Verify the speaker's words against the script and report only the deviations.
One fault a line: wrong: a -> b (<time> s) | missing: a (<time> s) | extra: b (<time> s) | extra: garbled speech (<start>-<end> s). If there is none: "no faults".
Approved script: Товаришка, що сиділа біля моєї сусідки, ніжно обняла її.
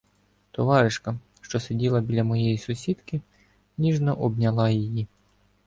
no faults